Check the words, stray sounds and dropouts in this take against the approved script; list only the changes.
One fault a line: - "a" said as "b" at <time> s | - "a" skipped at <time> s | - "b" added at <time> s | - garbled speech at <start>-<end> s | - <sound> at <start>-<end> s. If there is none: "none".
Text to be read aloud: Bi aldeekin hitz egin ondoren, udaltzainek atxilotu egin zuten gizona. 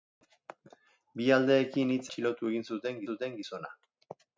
- "egin ondoren udaltzainek" skipped at 2.1 s
- "zuten" added at 3.1 s